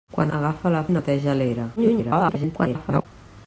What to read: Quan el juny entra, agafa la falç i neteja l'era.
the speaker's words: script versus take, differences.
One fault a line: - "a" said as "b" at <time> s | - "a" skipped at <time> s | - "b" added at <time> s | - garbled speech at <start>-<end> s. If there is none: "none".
- "el juny entra" skipped at 0.3 s
- "falç" skipped at 0.8 s
- garbled speech at 1.8-3.1 s